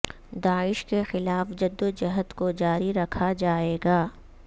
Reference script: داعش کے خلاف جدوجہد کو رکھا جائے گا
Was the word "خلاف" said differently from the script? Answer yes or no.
no